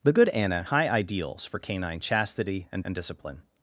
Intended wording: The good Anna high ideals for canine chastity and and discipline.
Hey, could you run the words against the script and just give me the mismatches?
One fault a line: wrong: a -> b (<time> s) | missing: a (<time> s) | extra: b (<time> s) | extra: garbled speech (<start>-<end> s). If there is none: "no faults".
no faults